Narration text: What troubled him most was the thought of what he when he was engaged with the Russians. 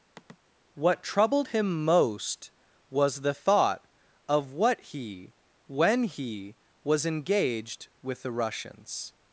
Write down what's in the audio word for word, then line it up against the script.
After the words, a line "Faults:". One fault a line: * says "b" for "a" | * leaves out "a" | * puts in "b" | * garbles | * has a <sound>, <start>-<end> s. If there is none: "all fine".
What troubled him most was the thought of what he when he was engaged with the Russians.
Faults:
* has a sigh, 0.2-0.4 s